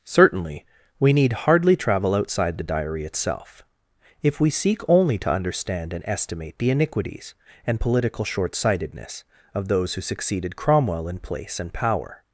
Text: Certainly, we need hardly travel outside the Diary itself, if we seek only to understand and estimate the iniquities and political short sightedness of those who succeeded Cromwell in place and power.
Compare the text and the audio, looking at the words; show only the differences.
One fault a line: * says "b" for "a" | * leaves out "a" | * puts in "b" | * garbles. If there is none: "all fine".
all fine